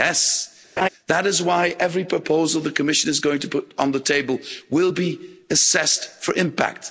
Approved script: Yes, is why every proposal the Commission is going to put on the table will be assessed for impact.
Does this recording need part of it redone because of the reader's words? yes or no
yes